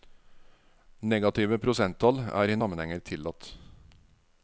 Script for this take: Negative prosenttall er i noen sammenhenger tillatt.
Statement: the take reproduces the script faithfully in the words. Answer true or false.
false